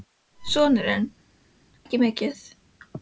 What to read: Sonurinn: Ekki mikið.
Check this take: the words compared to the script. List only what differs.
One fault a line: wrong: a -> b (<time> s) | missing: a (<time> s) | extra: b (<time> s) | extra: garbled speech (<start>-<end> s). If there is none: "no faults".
no faults